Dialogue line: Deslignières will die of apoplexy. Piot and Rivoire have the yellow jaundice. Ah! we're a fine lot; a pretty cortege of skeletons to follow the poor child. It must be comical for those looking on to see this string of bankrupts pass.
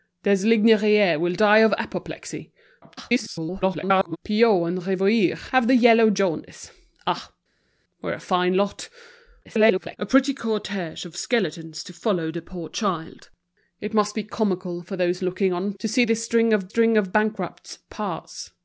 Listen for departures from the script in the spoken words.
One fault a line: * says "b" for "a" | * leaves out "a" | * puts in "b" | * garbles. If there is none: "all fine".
* garbles
* garbles
* puts in "string of"